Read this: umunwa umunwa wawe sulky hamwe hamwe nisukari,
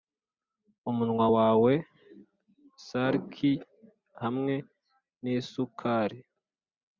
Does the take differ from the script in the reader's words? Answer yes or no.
yes